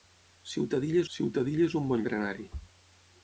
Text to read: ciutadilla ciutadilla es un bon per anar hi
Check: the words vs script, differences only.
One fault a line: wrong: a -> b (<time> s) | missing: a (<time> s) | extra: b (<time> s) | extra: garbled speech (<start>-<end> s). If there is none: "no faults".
no faults